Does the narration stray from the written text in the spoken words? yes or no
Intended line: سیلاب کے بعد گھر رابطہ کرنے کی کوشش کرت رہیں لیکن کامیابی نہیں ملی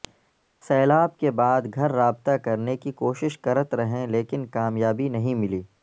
no